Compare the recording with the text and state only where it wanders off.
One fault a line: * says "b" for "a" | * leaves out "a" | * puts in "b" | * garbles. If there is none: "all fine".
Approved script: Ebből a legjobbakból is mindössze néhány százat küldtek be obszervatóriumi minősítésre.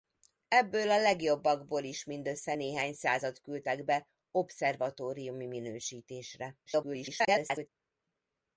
* garbles